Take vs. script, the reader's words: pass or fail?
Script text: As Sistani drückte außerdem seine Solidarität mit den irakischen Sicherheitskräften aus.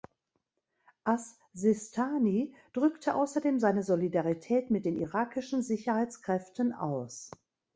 pass